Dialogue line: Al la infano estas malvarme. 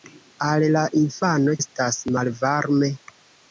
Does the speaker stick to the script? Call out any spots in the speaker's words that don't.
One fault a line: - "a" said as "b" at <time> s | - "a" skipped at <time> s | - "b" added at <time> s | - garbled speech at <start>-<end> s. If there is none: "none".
none